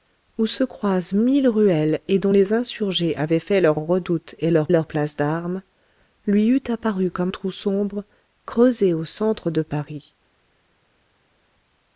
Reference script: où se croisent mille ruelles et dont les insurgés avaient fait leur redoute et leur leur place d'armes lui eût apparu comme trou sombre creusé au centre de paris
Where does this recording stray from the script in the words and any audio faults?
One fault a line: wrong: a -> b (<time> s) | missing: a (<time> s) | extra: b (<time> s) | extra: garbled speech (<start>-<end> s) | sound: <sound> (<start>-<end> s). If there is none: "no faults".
no faults